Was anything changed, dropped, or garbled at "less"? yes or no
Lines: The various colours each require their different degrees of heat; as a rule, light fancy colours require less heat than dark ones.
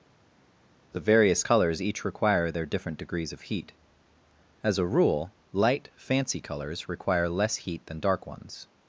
no